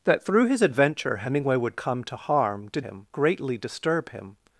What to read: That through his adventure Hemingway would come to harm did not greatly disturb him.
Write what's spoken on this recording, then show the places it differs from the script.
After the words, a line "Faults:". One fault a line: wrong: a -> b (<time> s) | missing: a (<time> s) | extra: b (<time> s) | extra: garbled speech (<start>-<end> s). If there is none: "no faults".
That through his adventure Hemingway would come to harm did him greatly disturb him.
Faults:
wrong: not -> him (2.8 s)